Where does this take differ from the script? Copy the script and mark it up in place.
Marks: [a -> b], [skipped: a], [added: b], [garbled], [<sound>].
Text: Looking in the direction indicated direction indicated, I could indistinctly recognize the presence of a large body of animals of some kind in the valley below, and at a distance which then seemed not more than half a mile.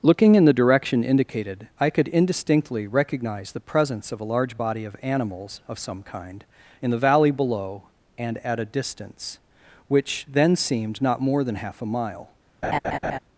Looking in the direction indicated [skipped: direction indicated,] I could indistinctly recognize the presence of a large body of animals of some kind in the valley below, and at a distance which then seemed not more than half a mile. [laugh]